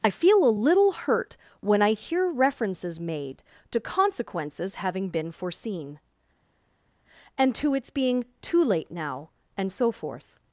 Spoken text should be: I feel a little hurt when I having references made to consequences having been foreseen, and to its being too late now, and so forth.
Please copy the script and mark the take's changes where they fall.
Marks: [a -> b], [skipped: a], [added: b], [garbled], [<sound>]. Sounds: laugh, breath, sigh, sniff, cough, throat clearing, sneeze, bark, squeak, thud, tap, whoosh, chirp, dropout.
I feel a little hurt when I [having -> hear] references made to consequences having been foreseen, and to its being too late now, and so forth.